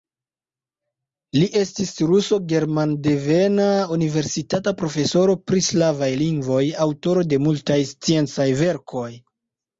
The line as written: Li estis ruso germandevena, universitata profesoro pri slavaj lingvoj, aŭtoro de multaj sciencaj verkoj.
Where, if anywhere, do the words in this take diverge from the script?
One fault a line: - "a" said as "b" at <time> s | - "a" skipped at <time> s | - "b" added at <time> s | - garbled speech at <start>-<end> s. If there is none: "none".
none